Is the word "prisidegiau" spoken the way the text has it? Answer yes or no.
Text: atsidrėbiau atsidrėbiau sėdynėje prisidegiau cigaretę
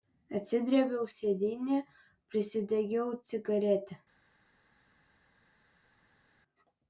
yes